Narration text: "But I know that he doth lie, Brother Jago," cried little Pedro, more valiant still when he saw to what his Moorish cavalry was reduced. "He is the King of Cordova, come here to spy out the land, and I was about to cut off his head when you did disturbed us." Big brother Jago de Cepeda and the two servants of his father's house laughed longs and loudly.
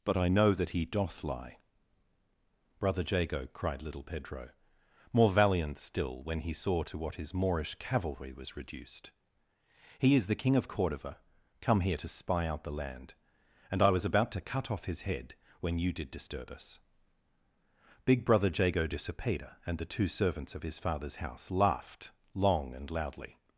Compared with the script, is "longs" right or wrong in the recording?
wrong